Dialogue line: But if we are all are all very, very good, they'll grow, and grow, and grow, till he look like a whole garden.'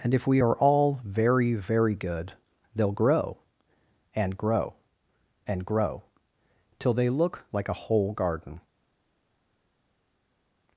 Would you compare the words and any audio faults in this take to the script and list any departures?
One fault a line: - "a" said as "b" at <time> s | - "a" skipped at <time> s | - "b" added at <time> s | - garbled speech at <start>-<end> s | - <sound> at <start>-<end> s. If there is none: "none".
- "But" said as "And" at 0.0 s
- "are all" skipped at 1.0 s
- "he" said as "they" at 6.9 s